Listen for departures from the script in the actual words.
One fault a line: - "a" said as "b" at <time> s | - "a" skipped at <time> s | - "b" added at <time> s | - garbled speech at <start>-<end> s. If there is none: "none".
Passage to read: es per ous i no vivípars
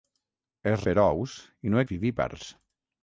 none